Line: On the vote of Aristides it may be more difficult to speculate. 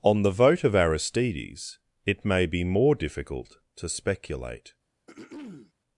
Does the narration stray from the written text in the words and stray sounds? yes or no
yes